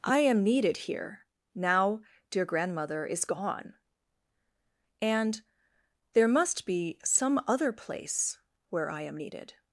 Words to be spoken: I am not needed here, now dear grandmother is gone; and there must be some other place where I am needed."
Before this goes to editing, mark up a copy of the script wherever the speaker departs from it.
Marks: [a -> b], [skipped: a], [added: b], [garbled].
I am [skipped: not] needed here, now dear grandmother is gone; and there must be some other place where I am needed."